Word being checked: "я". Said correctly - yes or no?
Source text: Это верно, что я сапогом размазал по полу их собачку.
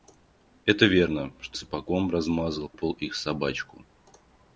no